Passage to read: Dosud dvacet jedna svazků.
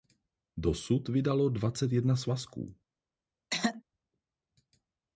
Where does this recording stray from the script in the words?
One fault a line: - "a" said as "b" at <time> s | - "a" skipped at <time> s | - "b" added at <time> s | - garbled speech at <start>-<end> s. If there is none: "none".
- "vydalo" added at 1.1 s